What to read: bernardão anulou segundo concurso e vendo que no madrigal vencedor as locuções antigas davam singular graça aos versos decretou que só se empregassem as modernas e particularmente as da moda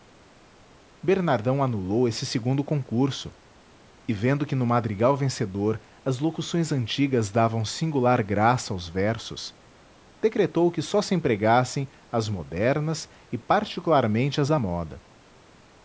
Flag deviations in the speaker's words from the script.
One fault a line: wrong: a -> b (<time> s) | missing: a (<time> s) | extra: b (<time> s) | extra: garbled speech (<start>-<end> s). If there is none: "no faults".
extra: esse (2.1 s)